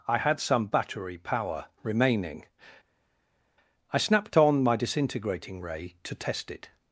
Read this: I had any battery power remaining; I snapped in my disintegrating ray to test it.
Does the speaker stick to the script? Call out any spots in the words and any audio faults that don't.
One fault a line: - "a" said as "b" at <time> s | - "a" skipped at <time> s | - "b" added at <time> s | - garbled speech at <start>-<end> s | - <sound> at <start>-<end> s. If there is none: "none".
- "any" said as "some" at 0.4 s
- "in" said as "on" at 4.4 s